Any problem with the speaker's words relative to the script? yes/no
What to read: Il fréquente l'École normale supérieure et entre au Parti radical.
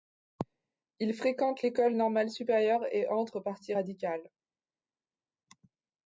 no